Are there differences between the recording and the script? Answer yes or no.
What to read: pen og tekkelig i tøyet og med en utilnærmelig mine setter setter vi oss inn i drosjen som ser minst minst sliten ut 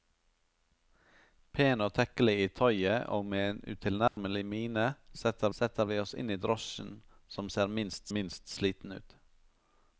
no